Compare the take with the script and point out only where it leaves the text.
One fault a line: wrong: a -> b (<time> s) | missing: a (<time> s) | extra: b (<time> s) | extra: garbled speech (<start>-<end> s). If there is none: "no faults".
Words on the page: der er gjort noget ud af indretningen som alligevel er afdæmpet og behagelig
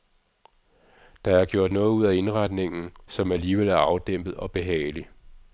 no faults